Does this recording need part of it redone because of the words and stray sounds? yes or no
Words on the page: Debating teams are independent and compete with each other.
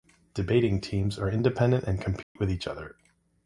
yes